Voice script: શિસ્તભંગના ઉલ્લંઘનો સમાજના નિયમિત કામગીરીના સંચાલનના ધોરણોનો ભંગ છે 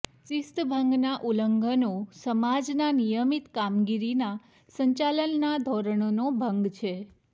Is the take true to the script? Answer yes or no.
yes